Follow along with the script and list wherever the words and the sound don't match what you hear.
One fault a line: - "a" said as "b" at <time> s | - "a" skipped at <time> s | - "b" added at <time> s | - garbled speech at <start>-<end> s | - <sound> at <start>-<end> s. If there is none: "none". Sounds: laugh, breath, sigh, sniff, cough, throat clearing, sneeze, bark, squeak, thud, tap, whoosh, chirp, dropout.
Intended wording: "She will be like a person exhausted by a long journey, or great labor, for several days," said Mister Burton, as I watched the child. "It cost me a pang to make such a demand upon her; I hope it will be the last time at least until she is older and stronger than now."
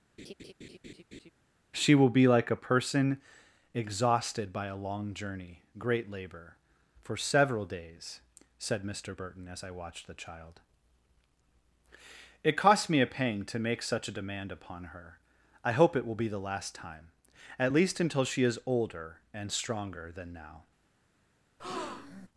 - laugh at 0.2-1.3 s
- "or" skipped at 5.6 s
- breath at 21.6-22.3 s